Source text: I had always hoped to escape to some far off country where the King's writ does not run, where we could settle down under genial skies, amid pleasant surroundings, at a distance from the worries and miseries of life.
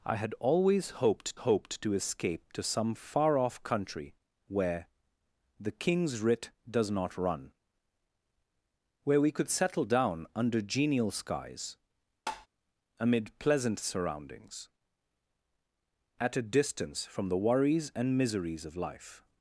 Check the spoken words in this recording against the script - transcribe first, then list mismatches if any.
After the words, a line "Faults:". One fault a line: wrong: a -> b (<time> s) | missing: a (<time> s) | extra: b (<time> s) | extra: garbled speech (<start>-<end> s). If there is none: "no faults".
I had always hoped hoped to escape to some far off country where the King's writ does not run, where we could settle down under genial skies, amid pleasant surroundings, at a distance from the worries and miseries of life.
Faults:
extra: hoped (1.4 s)